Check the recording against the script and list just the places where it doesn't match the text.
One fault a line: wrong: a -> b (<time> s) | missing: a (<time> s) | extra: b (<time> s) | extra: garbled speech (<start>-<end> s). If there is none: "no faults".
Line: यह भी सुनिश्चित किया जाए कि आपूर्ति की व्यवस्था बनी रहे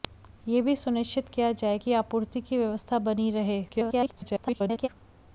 extra: garbled speech (3.7-4.9 s)